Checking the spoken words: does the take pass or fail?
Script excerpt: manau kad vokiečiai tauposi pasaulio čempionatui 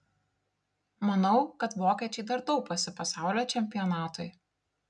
fail